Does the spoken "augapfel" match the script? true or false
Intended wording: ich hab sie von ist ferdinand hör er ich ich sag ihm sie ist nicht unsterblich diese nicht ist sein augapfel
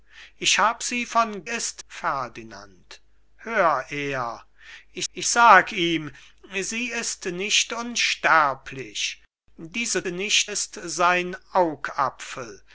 true